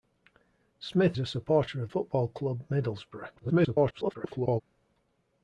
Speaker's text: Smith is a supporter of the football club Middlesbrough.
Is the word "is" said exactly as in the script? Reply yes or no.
no